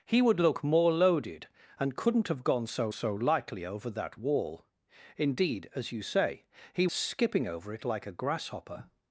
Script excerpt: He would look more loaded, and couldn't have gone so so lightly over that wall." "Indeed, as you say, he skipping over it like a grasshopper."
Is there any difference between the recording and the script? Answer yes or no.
no